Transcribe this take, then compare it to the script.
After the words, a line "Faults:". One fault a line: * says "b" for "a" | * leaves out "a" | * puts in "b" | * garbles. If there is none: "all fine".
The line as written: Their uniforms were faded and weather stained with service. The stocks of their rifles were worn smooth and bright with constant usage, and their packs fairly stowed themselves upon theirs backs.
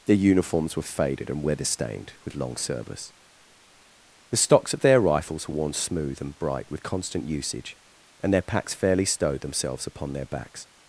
Their uniforms were faded and weather stained with long service. The stocks of their rifles were worn smooth and bright with constant usage, and their packs fairly stowed themselves upon their backs.
Faults:
* puts in "long"
* says "their" for "theirs"